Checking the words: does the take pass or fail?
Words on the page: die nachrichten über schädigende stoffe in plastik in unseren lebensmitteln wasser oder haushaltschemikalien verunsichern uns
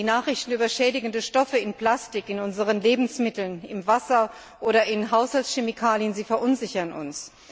fail